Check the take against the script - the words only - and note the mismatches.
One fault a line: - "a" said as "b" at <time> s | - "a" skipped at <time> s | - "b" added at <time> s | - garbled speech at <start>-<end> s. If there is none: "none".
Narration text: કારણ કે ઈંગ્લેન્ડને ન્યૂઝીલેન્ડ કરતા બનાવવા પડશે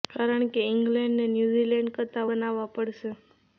none